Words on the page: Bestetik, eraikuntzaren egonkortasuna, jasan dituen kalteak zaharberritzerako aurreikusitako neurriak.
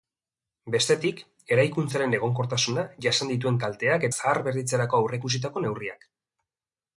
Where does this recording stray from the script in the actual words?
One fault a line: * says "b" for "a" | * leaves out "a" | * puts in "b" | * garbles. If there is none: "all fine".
all fine